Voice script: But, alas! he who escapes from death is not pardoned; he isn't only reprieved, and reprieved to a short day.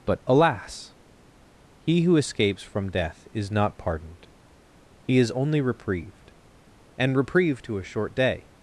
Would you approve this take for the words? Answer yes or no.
no